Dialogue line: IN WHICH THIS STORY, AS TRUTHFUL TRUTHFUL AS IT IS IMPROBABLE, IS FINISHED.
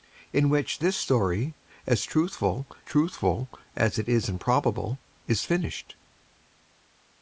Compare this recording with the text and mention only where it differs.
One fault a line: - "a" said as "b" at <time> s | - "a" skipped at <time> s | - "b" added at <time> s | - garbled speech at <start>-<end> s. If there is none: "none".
none